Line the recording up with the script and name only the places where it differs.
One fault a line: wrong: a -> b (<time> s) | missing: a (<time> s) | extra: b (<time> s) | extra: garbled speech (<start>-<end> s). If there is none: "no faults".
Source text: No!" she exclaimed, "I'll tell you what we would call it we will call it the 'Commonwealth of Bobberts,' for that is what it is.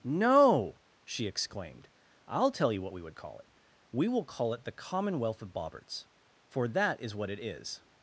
no faults